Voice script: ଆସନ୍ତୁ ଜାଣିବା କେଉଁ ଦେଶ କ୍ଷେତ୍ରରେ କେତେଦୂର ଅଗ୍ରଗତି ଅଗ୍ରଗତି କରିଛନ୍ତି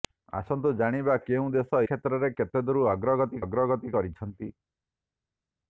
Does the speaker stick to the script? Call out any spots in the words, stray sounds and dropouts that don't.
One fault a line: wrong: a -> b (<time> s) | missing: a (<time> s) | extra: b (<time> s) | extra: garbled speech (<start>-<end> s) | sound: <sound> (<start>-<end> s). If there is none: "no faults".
no faults